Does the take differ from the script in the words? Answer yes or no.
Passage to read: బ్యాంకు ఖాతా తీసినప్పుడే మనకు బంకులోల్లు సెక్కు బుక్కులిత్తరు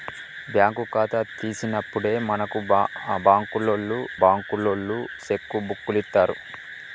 yes